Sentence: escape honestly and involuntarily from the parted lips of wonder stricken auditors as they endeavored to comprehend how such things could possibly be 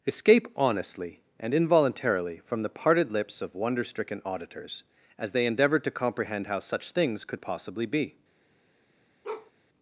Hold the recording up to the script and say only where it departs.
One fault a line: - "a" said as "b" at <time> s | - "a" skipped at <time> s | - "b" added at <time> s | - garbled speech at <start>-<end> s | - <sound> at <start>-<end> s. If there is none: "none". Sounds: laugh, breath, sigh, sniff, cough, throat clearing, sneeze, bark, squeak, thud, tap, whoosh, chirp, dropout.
- bark at 9.2-9.5 s